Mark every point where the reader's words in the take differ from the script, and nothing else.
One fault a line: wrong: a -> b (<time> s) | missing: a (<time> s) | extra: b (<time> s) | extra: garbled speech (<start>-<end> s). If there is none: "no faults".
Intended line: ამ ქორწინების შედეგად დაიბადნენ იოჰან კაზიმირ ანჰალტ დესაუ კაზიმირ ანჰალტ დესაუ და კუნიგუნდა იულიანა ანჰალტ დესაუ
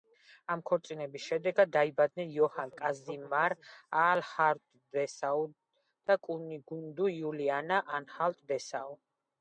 missing: კაზიმირ ანჰალტ დესაუ (5.4 s)